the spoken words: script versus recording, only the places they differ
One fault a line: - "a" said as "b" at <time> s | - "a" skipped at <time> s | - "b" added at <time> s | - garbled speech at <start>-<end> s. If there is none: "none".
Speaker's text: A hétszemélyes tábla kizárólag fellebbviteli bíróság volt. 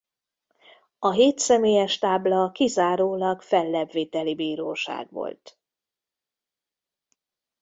none